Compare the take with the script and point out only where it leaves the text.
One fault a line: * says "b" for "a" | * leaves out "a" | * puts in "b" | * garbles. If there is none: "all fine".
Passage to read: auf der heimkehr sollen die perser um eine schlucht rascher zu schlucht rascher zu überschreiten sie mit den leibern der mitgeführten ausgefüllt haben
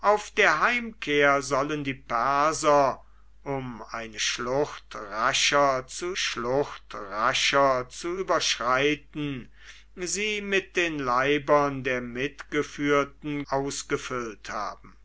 all fine